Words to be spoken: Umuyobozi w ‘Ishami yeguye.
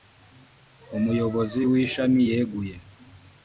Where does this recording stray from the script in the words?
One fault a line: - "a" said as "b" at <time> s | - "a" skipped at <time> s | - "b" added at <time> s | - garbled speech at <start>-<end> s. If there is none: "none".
none